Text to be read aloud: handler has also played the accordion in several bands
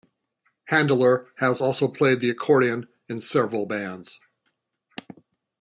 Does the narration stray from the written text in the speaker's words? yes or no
no